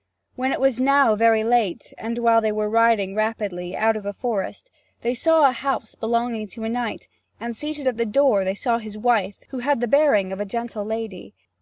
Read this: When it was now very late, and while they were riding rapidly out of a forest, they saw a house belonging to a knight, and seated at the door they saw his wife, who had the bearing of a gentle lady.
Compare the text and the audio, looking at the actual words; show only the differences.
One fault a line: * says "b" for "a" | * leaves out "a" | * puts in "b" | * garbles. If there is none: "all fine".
all fine